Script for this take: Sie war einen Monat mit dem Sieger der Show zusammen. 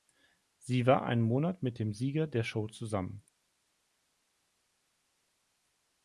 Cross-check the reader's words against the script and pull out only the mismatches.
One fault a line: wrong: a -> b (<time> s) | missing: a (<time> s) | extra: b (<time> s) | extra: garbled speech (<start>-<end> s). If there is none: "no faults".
no faults